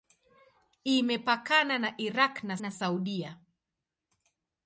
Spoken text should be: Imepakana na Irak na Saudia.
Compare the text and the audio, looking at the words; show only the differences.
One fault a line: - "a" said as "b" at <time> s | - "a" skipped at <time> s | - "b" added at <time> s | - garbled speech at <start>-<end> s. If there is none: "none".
- "na" added at 2.6 s